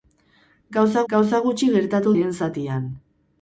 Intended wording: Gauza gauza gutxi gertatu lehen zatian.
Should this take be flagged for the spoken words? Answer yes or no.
no